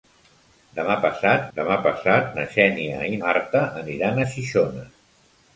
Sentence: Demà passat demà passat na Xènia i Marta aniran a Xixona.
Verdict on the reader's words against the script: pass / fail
pass